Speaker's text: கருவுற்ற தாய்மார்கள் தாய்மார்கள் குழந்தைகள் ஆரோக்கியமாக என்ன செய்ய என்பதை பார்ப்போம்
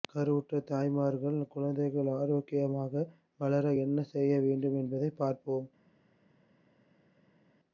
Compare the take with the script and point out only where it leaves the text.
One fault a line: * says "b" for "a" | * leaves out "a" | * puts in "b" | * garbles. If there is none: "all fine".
* leaves out "தாய்மார்கள்"
* puts in "வளர"
* puts in "வேண்டும்"